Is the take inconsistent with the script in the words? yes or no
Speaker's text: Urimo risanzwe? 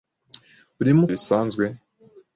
no